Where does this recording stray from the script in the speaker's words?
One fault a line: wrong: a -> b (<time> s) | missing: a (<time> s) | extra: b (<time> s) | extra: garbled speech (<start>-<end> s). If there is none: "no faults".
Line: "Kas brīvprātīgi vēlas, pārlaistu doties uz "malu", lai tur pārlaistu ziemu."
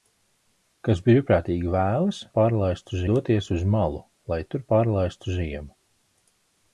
no faults